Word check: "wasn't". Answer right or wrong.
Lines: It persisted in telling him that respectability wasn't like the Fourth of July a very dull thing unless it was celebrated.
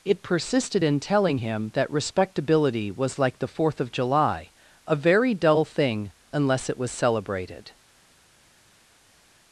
wrong